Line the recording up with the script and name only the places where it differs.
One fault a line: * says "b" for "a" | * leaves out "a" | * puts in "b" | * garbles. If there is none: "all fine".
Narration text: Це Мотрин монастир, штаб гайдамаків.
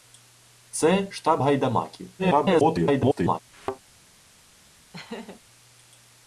* leaves out "Мотрин монастир"
* garbles